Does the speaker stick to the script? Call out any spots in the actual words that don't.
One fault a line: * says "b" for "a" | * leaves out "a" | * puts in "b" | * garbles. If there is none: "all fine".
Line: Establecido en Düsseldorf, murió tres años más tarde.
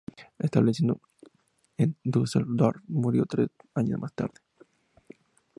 all fine